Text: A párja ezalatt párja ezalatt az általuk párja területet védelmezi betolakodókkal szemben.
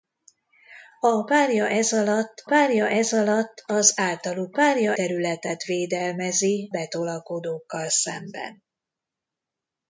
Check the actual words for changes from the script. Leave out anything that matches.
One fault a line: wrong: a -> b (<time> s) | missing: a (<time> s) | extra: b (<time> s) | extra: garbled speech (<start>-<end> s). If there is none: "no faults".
no faults